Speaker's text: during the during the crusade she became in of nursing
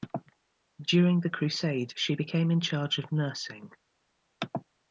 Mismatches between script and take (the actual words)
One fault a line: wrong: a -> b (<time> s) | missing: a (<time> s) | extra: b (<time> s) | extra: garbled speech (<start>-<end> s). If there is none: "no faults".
missing: during the (1.3 s)
extra: charge (2.6 s)